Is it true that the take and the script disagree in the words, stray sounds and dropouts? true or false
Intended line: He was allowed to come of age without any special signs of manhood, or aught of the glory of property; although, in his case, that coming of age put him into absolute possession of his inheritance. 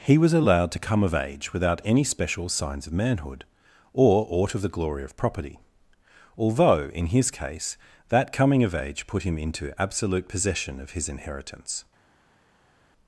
false